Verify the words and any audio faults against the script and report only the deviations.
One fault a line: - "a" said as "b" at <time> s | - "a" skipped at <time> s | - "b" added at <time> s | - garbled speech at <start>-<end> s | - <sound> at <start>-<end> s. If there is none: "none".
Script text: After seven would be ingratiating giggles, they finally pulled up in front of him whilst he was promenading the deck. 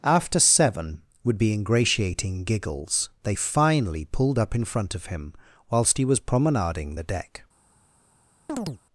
- chirp at 8.5-8.8 s